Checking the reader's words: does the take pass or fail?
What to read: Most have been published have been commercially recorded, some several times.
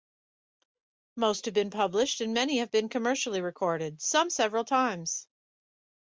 fail